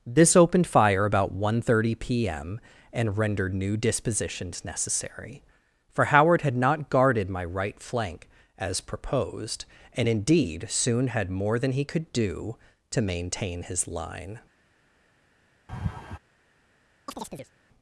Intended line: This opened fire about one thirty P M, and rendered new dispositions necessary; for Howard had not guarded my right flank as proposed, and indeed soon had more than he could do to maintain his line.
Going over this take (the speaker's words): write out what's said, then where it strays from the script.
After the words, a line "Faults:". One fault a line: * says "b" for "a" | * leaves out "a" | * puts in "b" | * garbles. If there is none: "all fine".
This opened fire about one thirty P M, and rendered new dispositions necessary; for Howard had not guarded my right flank as proposed, and indeed soon had more than he could do to maintain his line.
Faults:
all fine